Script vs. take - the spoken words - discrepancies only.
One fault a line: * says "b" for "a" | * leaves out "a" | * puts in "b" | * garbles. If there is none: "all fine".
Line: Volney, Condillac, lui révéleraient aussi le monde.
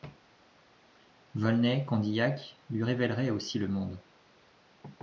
all fine